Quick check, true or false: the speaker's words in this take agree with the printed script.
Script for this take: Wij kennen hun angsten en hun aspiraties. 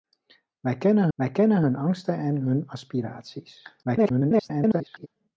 false